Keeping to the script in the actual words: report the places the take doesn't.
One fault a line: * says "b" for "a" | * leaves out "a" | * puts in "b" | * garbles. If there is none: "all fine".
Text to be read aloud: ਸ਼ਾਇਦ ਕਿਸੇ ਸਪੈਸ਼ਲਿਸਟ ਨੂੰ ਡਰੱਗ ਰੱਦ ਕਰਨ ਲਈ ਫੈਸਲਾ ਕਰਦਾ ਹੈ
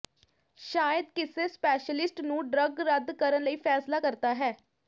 all fine